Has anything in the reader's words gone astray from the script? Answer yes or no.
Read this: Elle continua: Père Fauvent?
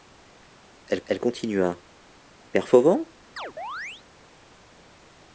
yes